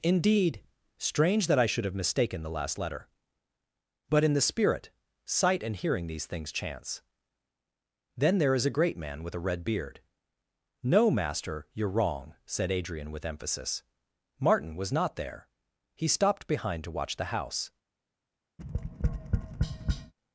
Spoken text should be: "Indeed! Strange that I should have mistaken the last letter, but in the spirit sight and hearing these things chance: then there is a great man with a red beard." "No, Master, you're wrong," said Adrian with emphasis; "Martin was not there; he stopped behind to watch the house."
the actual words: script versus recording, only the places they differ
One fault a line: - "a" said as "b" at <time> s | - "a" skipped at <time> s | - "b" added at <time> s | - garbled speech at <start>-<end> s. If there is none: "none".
none